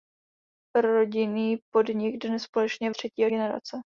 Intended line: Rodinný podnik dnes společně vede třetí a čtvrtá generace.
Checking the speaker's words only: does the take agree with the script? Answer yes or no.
no